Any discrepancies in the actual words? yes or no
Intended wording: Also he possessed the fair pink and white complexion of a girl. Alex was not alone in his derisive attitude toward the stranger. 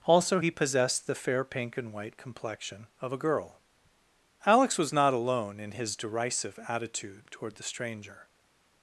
no